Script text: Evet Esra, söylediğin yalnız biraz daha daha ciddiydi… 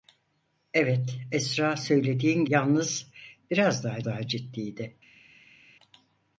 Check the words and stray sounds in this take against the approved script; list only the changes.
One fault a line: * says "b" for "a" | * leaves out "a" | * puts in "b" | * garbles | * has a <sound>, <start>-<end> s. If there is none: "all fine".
all fine